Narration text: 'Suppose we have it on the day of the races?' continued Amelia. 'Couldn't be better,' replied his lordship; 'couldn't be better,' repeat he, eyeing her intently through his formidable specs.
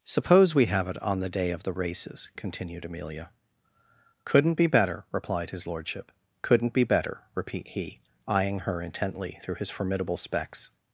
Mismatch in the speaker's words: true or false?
false